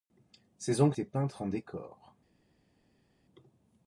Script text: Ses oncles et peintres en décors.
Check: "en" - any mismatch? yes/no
no